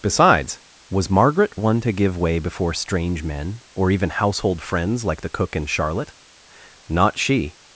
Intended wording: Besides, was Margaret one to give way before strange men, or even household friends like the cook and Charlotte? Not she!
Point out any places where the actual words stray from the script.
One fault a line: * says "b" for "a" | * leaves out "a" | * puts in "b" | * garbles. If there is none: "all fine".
all fine